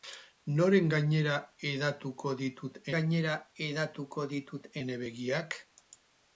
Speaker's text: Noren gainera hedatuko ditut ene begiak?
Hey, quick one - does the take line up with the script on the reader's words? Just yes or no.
no